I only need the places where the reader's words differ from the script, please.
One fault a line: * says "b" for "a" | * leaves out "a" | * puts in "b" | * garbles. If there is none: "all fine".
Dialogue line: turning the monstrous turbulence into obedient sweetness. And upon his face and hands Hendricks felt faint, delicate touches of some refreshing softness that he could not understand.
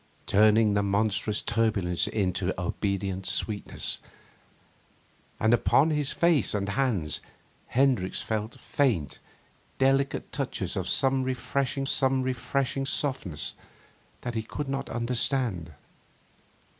* puts in "some refreshing"